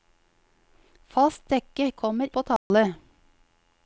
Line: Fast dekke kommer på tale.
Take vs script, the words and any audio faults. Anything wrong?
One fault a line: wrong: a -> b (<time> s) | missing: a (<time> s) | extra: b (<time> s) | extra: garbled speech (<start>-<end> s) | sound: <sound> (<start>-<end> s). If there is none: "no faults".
sound: dropout (2.6-2.7 s)